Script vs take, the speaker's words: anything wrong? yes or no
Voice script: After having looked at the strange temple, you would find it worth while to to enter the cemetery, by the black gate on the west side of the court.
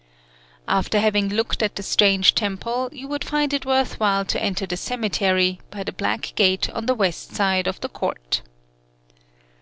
yes